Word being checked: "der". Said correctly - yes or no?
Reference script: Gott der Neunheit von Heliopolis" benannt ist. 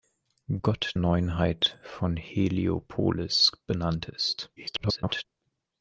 no